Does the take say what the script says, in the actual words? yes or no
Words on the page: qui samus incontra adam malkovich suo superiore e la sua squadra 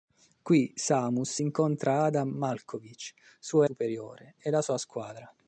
yes